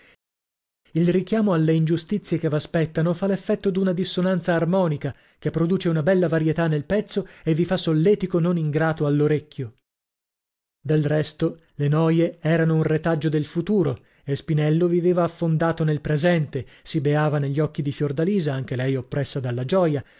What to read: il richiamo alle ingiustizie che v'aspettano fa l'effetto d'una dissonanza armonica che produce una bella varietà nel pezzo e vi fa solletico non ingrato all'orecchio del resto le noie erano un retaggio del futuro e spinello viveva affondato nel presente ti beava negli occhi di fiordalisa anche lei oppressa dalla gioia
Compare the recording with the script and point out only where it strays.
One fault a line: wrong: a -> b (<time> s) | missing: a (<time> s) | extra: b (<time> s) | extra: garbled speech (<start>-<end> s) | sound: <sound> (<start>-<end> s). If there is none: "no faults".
wrong: ti -> si (16.8 s)